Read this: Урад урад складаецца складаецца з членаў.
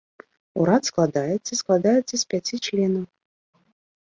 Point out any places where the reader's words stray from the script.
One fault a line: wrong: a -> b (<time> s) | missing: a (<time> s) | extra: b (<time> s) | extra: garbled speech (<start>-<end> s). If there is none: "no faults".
missing: урад (0.9 s)
extra: пяці (2.4 s)